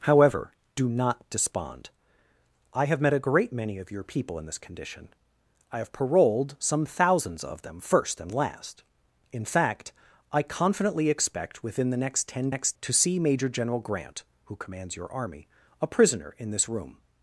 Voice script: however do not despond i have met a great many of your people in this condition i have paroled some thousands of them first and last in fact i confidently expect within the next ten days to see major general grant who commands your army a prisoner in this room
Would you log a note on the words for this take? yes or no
yes